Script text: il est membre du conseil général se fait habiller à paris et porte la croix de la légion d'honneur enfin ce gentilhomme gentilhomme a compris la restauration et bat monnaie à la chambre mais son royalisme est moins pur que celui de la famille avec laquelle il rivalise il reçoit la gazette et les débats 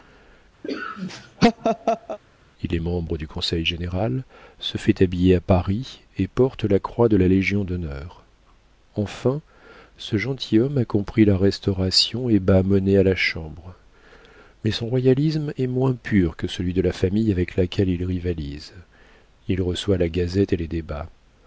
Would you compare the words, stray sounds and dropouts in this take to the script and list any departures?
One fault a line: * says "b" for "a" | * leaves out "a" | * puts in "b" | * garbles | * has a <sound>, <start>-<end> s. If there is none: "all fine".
* has a laugh, 0.6-2.2 s
* leaves out "gentilhomme"